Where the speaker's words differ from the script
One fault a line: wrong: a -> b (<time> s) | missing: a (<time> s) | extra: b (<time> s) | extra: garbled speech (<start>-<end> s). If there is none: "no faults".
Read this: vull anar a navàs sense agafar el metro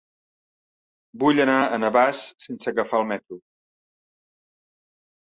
no faults